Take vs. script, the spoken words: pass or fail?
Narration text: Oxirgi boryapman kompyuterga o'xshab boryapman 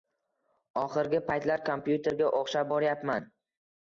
fail